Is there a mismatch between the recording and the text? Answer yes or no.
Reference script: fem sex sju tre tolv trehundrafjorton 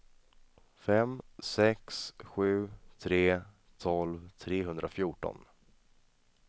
no